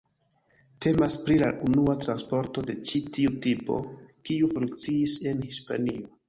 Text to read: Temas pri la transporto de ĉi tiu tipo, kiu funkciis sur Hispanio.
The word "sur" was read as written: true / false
false